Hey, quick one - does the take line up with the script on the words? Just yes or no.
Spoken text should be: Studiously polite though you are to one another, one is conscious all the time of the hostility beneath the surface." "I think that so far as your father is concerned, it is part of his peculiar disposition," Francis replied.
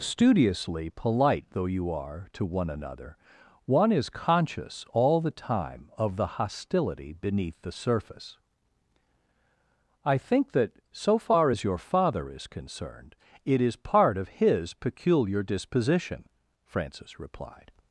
yes